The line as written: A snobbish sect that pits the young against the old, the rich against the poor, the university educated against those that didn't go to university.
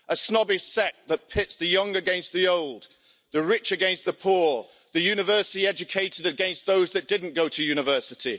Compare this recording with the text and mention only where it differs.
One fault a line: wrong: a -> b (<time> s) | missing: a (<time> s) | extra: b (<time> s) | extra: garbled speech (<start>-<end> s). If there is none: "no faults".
no faults